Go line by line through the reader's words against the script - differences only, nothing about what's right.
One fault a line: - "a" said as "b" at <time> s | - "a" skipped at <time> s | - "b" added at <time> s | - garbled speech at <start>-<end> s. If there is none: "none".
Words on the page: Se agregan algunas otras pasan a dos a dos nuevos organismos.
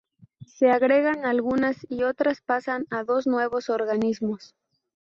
- "y" added at 1.9 s
- "a dos" skipped at 3.3 s